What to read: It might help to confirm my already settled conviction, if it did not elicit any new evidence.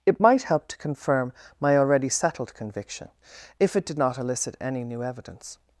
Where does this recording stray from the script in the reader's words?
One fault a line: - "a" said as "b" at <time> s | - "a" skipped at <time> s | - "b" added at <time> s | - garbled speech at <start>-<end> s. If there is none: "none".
none